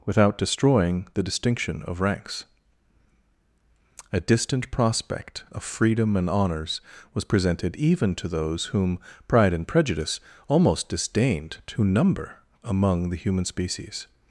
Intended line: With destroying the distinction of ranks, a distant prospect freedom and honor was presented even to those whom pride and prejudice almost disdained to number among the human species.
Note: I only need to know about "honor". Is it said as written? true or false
false